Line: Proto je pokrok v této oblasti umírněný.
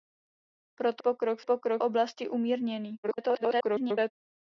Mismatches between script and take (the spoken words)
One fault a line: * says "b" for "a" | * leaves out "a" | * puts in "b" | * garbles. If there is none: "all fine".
* leaves out "je"
* says "pokrok" for "této"
* garbles